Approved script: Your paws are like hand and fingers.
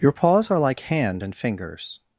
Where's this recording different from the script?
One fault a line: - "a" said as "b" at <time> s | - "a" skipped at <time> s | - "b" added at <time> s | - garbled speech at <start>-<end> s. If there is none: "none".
none